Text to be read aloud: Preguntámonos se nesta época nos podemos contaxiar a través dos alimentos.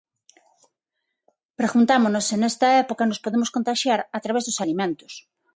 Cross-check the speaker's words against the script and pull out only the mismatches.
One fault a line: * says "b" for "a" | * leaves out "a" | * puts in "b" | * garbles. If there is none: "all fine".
all fine